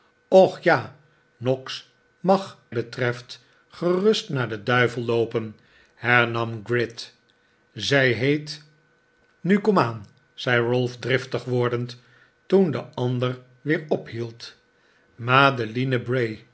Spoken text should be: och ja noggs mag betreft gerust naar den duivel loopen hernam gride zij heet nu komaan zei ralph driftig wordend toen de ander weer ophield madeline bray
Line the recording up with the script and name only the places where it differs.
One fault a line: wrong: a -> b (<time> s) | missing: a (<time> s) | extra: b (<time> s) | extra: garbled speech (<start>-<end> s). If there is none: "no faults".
no faults